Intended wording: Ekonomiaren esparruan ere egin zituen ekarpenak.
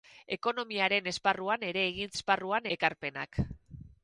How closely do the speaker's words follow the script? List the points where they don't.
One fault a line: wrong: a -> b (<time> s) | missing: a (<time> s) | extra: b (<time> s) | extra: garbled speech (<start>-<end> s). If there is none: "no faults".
wrong: zituen -> esparruan (2.1 s)